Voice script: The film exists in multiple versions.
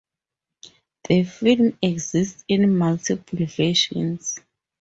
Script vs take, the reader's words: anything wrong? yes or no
no